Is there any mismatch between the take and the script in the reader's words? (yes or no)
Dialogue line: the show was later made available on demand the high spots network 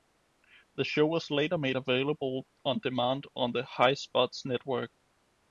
yes